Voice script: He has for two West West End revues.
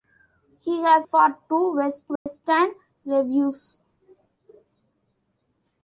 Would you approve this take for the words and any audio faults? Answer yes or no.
no